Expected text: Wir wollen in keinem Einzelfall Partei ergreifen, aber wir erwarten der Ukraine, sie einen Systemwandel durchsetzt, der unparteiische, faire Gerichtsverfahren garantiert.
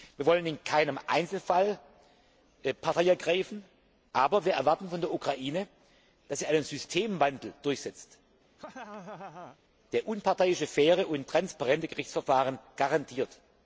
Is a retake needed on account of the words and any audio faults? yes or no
yes